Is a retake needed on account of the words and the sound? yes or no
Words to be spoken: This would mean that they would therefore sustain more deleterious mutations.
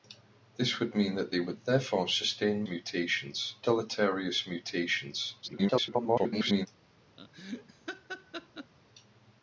yes